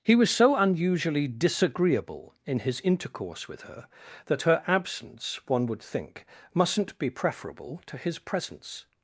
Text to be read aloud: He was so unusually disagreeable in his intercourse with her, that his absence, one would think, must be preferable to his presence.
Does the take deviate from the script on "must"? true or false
true